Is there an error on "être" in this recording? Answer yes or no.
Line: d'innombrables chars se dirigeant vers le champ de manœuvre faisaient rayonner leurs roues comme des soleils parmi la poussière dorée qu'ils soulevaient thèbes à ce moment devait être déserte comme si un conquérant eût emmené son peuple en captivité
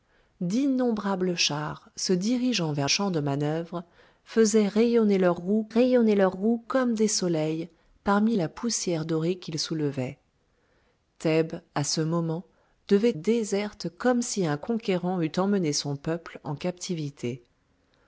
yes